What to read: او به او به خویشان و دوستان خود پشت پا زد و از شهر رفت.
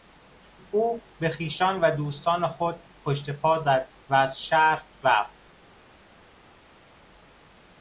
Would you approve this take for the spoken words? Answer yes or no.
no